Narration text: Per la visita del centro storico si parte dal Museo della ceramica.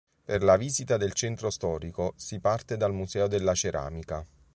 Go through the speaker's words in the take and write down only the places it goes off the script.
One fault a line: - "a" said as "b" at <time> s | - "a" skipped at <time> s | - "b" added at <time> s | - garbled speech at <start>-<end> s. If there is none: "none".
none